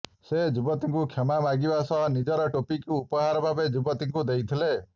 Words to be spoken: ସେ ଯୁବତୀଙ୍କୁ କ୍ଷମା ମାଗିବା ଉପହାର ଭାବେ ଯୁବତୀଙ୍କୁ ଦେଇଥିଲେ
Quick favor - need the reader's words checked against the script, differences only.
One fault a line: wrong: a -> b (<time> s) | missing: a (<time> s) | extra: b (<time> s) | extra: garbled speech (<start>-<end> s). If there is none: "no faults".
extra: ସହ ନିଜର ଟୋପିକୁ (1.9 s)